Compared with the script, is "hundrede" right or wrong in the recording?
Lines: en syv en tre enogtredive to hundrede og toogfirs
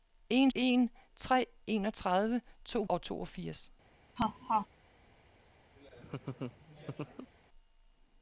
wrong